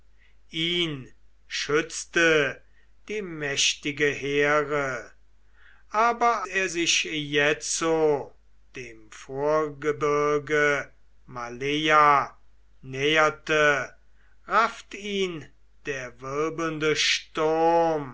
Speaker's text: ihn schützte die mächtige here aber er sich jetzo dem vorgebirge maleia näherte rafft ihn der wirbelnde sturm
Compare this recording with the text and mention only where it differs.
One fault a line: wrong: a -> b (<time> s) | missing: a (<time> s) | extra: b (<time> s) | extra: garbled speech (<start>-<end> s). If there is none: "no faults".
no faults